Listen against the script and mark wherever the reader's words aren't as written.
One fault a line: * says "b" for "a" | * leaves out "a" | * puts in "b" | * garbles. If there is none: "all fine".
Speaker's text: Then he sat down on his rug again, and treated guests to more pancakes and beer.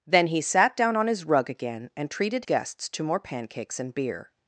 all fine